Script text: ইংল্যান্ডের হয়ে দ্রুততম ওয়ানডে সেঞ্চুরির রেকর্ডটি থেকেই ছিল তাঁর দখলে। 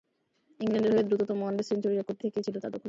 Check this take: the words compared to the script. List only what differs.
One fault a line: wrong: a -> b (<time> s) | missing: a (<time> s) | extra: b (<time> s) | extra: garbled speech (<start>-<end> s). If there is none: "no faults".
no faults